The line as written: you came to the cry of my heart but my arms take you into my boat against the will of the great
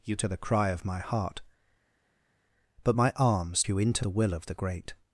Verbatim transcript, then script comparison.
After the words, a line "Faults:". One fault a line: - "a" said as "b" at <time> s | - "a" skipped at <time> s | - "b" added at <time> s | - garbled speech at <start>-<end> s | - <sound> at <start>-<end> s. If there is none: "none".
you to the cry of my heart but my arms you into the will of the great
Faults:
- "came" skipped at 0.2 s
- "take" skipped at 3.6 s
- "my boat against" skipped at 4.0 s